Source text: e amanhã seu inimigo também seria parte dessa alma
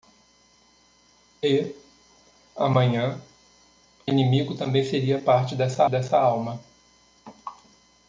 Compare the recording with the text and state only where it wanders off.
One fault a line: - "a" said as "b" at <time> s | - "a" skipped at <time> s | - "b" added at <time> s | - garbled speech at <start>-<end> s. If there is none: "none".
- "seu" skipped at 3.2 s
- "dessa" added at 5.9 s